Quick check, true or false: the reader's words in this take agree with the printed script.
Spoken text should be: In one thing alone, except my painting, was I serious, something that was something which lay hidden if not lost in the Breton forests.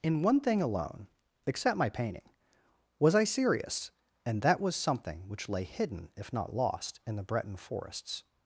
false